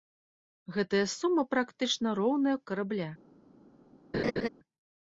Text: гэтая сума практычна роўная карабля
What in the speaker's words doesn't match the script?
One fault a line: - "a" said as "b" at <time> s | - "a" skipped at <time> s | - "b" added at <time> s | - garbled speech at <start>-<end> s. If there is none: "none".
none